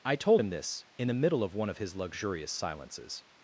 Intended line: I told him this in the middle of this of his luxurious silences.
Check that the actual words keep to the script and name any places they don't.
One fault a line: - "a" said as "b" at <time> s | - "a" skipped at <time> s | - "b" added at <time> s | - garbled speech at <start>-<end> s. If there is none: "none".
- "this" said as "one" at 1.5 s